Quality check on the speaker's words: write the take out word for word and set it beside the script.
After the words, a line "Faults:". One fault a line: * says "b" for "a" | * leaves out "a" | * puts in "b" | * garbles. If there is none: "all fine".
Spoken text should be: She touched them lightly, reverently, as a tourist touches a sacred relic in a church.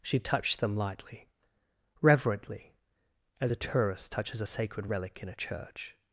She touched them lightly, reverently, as a tourist touches a sacred relic in a church.
Faults:
all fine